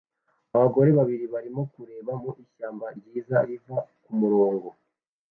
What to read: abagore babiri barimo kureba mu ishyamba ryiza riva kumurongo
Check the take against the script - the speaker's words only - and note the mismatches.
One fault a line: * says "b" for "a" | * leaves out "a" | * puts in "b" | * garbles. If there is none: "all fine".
all fine